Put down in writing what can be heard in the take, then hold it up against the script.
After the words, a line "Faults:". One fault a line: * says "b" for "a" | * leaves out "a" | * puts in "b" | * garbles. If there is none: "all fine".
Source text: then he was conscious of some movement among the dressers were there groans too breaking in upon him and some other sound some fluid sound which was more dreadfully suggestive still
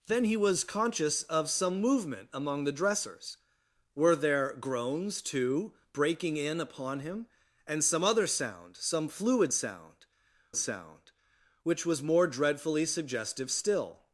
then he was conscious of some movement among the dressers were there groans too breaking in upon him and some other sound some fluid sound sound which was more dreadfully suggestive still
Faults:
* puts in "sound"